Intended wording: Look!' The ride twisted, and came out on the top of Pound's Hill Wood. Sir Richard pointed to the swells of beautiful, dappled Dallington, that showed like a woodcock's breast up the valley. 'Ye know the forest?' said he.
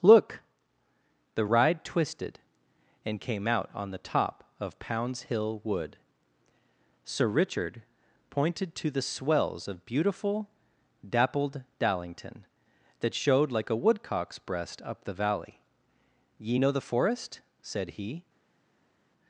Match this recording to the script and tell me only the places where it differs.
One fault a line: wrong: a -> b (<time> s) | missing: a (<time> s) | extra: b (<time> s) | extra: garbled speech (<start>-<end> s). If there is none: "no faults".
no faults